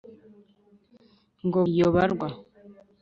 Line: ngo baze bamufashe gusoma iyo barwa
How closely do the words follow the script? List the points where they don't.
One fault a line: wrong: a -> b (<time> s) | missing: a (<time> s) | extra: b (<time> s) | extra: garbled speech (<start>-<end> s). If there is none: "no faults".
missing: baze bamufashe gusoma (1.6 s)